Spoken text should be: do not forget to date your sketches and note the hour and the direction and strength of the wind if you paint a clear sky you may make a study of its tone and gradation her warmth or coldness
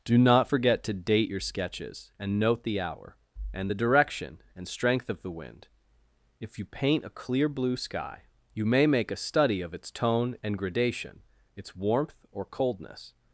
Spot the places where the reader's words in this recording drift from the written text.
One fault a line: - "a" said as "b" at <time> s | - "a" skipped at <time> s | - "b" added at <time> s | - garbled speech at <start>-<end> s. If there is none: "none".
- "blue" added at 7.5 s
- "her" said as "its" at 11.5 s